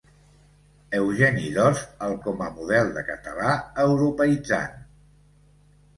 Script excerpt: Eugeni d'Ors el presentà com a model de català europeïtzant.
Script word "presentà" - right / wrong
wrong